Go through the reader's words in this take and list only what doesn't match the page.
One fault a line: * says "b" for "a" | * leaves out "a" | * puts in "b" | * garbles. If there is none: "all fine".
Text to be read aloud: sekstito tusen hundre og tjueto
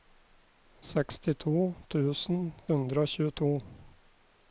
all fine